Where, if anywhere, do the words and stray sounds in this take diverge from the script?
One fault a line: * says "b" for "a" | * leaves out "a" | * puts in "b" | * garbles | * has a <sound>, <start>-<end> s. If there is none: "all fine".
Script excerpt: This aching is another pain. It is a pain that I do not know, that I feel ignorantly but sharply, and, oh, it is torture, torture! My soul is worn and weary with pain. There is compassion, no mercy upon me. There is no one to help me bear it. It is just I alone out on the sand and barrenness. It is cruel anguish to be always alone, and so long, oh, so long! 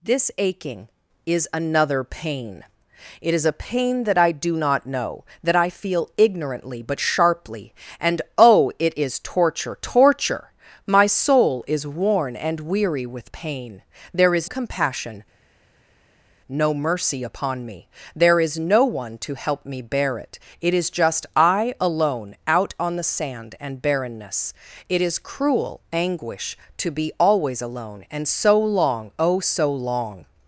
all fine